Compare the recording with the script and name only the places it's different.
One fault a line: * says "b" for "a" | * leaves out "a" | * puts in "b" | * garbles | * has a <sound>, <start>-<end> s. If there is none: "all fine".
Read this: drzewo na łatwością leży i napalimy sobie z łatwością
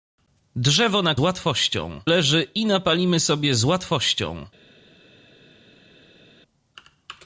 all fine